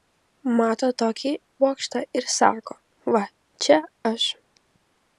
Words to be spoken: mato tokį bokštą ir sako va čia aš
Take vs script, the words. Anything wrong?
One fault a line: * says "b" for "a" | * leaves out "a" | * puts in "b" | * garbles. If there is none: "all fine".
all fine